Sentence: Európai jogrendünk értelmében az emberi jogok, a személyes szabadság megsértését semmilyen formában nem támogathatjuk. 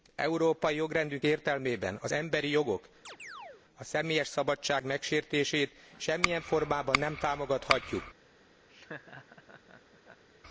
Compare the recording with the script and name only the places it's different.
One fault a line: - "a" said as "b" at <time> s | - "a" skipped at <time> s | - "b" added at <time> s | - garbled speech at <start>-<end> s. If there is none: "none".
none